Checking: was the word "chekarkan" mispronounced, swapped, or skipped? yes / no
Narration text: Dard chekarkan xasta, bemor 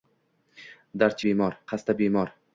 yes